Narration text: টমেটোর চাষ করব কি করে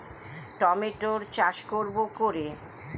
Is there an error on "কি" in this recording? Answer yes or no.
yes